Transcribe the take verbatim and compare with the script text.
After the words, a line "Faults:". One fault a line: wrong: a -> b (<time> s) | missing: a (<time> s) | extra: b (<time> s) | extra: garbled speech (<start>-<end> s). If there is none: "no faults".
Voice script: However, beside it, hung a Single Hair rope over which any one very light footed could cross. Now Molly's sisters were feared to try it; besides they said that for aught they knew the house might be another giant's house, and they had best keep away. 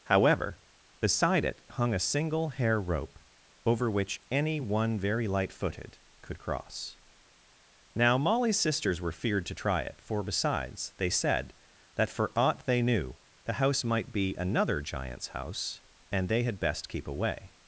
However, beside it, hung a Single Hair rope over which any one very light footed could cross. Now Molly's sisters were feared to try it; for besides they said that for aught they knew the house might be another giant's house, and they had best keep away.
Faults:
extra: for (10.0 s)